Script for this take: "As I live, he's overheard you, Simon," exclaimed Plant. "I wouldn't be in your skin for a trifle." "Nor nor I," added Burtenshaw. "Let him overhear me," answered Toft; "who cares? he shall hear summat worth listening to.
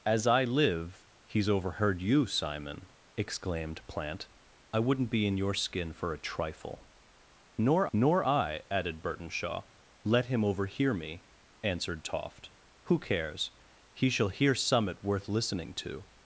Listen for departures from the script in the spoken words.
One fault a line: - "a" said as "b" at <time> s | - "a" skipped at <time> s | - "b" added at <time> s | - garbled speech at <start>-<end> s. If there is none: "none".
none